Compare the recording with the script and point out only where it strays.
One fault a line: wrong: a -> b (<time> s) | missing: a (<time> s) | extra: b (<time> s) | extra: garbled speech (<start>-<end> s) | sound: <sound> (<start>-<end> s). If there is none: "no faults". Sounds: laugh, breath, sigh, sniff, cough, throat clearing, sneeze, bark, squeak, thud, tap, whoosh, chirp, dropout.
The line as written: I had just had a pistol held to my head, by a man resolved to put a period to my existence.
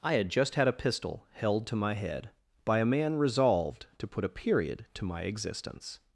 no faults